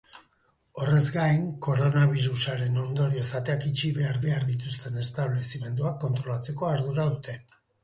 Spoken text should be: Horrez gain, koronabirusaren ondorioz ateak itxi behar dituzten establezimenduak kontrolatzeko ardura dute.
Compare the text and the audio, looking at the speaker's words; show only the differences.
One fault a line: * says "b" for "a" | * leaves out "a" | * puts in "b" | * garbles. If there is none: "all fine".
* puts in "behar"